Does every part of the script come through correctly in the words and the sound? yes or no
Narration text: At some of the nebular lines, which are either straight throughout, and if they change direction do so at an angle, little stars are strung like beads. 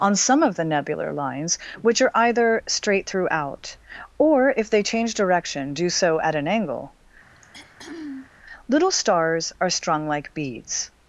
no